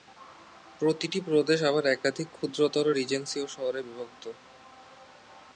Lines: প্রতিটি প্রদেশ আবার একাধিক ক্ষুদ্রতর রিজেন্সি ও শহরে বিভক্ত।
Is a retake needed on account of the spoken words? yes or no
no